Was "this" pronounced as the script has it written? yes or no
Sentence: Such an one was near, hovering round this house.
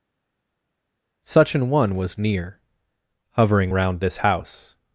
yes